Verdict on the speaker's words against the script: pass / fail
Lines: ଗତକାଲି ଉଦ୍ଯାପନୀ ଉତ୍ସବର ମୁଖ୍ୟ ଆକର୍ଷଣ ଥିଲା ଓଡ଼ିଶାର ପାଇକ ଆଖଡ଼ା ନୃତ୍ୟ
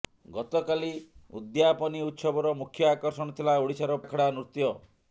fail